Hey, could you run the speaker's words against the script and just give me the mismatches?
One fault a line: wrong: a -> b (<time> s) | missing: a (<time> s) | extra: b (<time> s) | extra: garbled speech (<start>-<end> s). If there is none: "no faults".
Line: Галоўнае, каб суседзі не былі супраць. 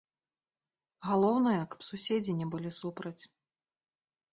no faults